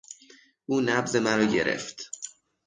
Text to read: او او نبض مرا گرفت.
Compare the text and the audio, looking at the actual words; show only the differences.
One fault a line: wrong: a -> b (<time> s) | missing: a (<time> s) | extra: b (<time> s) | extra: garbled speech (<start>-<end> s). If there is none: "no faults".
missing: او (0.8 s)